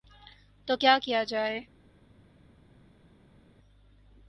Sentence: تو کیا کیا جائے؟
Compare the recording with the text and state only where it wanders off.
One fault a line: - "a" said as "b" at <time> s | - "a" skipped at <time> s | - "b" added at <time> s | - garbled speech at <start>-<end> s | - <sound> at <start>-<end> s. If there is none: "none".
none